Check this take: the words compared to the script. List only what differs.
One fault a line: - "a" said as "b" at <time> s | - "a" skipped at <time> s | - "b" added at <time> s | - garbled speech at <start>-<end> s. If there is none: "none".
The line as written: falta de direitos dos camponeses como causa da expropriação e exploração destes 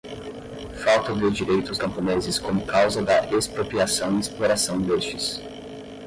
- "dos" skipped at 1.8 s